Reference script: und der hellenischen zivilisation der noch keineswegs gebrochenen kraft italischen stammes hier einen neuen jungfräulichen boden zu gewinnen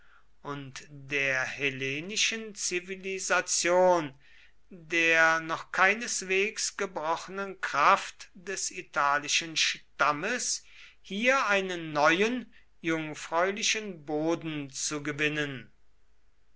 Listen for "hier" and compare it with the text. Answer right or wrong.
right